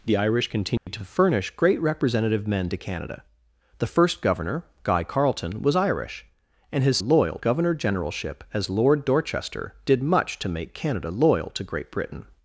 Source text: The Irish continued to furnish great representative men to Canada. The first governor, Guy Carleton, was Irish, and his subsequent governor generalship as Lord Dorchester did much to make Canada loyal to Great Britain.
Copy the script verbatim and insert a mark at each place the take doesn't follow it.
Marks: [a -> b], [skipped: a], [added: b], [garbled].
The Irish continued to furnish great representative men to Canada. The first governor, Guy Carleton, was Irish, and his [subsequent -> loyal] governor generalship as Lord Dorchester did much to make Canada loyal to Great Britain.